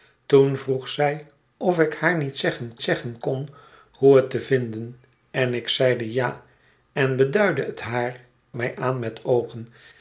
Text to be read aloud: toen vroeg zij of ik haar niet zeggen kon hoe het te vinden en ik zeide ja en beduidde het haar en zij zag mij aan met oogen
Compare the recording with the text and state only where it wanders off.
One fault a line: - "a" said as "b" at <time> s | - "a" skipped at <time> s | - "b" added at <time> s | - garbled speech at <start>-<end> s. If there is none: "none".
- "zeggen" added at 2.8 s
- "en zij zag" skipped at 8.2 s